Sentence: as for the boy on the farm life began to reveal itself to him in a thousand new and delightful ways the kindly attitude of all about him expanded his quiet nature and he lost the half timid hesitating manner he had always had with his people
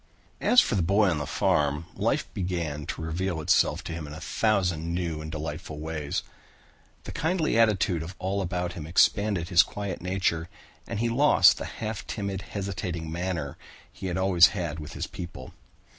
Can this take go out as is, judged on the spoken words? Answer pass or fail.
pass